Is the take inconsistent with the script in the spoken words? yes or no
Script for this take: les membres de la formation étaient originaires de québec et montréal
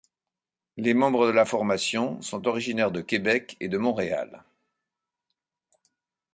yes